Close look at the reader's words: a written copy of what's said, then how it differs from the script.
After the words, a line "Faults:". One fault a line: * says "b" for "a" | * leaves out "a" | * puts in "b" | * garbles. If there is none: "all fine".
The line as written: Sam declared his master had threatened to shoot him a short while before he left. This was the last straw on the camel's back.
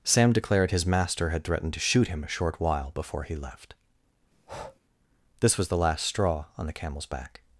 Sam declared his master had threatened to shoot him a short while before he left. This was the last straw on the camel's back.
Faults:
all fine